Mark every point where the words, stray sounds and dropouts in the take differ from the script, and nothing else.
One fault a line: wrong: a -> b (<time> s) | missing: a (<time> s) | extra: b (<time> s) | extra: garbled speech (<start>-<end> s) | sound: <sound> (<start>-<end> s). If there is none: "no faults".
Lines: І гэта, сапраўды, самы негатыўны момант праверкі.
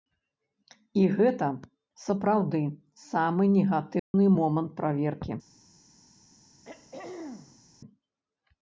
sound: dropout (4.0-4.1 s)
sound: throat clearing (6.6-7.6 s)